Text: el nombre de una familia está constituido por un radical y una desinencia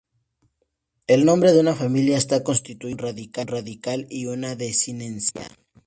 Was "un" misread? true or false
false